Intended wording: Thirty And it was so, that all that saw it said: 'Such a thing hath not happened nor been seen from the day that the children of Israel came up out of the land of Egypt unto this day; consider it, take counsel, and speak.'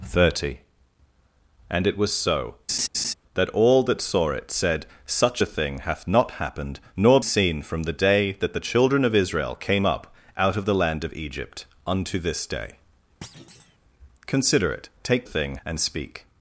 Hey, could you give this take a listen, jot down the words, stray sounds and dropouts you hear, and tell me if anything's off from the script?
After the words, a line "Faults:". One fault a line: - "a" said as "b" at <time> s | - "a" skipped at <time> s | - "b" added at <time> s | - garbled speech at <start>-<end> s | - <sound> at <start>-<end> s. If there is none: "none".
Thirty And it was so, that all that saw it said: 'Such a thing hath not happened nor seen from the day that the children of Israel came up out of the land of Egypt unto this day; consider it, take thing, and speak.'
Faults:
- laugh at 2.7-3.1 s
- "been" skipped at 7.2 s
- thud at 13.2-13.8 s
- "counsel" said as "thing" at 15.2 s